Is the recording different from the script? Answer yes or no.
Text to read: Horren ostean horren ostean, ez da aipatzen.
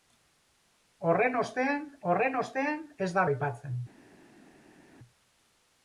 no